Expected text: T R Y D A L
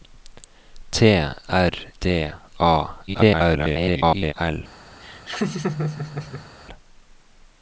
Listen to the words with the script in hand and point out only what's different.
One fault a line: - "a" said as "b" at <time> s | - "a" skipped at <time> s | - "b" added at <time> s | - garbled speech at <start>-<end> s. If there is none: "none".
- "Y" skipped at 1.7 s
- garbled speech at 3.1-4.3 s